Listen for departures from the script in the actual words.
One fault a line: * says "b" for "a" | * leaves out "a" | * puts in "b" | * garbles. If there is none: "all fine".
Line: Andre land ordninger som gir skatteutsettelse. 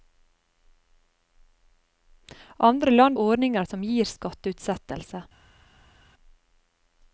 all fine